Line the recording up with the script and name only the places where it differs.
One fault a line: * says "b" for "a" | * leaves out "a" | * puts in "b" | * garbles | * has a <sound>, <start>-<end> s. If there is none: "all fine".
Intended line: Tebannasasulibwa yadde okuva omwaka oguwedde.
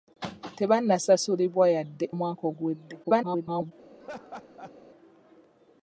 * leaves out "okuva"
* garbles
* has a laugh, 4.0-4.7 s